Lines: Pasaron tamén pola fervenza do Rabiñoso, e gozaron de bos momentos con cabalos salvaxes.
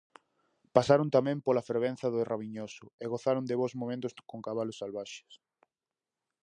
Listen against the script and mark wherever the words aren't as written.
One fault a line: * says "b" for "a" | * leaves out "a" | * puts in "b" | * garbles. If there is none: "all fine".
all fine